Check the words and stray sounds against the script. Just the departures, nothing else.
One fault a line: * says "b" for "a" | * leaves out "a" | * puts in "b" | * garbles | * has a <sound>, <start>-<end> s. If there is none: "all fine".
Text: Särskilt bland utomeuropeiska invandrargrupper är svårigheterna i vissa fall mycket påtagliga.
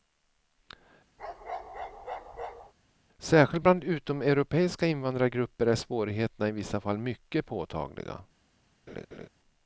* has a bark, 1.2-2.7 s
* has a laugh, 8.9-9.3 s